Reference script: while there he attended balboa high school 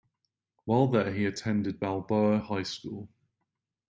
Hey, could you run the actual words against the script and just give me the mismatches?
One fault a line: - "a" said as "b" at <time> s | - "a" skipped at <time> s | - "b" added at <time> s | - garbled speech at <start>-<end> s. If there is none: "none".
none